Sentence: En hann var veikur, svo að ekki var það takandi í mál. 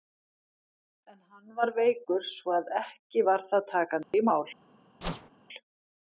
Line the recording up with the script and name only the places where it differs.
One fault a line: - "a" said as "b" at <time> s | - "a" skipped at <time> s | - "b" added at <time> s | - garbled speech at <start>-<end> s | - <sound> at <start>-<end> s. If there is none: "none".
- dropout at 4.0-4.1 s
- whoosh at 5.0-5.3 s